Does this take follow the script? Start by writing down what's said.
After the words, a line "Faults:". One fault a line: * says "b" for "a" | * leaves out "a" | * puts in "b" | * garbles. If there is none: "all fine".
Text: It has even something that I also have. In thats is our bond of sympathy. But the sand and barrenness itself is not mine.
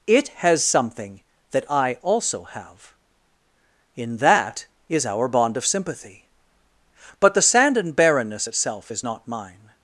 It has something that I also have. In that is our bond of sympathy. But the sand and barrenness itself is not mine.
Faults:
* leaves out "even"
* says "that" for "thats"